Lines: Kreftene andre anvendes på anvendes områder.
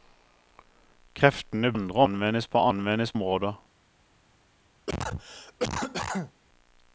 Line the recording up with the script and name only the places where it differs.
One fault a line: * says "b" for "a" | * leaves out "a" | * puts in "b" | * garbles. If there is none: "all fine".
all fine